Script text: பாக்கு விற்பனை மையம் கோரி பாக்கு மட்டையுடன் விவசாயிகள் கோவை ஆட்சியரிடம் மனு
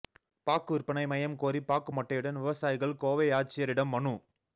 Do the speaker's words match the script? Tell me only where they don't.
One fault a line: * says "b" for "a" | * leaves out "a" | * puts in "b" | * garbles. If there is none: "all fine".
all fine